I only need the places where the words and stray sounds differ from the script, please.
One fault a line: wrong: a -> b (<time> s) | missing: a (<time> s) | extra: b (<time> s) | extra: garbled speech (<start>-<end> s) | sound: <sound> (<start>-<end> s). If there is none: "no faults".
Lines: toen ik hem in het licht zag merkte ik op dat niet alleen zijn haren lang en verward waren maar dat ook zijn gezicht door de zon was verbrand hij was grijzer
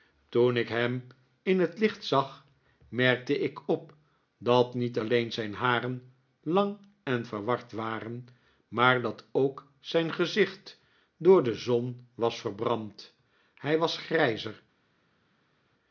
no faults